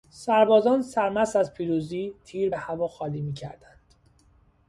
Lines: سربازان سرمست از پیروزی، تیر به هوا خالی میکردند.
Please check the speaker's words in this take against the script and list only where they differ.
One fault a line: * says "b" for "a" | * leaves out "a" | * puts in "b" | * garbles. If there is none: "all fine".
all fine